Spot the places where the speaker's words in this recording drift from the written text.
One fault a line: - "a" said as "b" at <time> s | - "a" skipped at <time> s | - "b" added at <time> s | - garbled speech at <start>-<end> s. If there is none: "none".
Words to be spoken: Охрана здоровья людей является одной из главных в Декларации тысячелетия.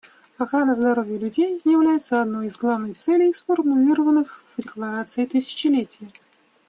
- "целей сформулированных" added at 3.0 s